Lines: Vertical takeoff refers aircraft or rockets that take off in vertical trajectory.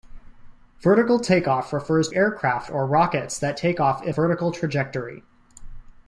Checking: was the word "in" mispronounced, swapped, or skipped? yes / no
no